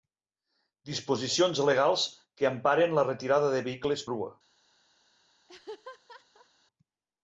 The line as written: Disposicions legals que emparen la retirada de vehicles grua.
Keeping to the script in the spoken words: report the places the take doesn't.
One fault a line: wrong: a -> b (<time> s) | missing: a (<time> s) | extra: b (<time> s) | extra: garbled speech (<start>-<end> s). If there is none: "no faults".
no faults